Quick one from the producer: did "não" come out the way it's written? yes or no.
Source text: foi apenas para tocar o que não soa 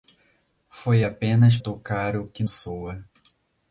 no